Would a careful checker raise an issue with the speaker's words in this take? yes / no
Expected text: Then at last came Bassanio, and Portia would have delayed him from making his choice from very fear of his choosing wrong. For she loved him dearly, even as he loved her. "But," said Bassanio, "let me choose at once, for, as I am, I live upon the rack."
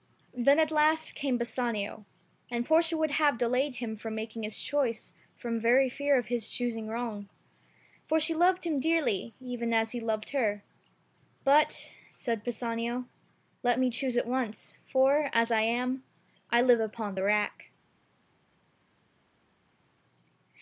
no